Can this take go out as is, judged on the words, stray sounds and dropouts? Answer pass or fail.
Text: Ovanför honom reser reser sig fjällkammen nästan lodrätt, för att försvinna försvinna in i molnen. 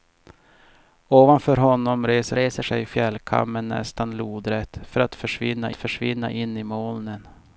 pass